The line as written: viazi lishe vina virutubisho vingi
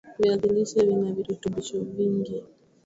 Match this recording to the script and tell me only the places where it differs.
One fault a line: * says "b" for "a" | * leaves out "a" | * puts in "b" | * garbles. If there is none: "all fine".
all fine